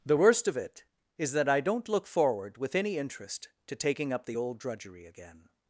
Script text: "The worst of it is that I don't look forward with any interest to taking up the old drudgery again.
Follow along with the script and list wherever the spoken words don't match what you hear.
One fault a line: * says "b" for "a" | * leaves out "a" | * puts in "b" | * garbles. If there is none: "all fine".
all fine